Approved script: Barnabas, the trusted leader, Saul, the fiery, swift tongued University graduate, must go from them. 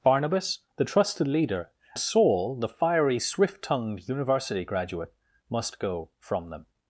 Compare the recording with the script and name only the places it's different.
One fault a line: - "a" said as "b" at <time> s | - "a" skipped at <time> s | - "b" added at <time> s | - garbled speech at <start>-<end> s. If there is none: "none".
none